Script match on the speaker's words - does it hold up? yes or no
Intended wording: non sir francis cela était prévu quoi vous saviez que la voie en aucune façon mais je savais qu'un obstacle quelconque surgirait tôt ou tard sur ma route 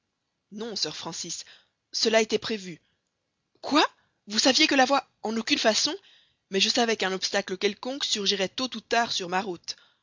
yes